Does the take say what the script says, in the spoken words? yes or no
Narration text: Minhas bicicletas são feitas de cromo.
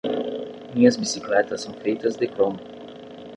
yes